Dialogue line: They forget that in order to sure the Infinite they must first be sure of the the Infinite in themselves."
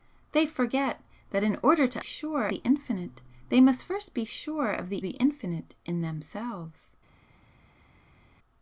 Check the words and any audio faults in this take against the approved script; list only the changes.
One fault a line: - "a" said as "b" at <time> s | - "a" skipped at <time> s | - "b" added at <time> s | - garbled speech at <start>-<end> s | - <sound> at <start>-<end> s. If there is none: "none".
none